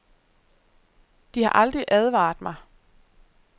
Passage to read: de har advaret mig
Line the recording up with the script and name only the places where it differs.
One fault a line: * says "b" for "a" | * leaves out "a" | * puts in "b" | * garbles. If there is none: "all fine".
* puts in "aldrig"